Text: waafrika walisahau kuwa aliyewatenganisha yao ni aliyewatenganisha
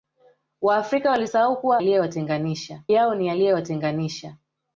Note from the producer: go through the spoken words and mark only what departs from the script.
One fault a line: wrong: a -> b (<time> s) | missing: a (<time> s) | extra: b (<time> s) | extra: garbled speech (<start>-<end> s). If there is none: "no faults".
no faults